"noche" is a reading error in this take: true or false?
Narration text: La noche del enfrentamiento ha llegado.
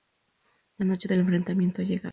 false